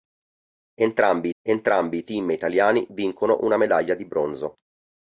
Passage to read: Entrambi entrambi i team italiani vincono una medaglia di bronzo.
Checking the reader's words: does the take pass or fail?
pass